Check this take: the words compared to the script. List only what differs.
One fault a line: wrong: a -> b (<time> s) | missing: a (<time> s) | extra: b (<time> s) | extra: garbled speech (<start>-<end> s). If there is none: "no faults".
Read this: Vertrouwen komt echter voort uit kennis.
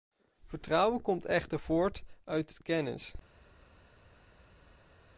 no faults